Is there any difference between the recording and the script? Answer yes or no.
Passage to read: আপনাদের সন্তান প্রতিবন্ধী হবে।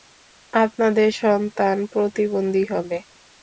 no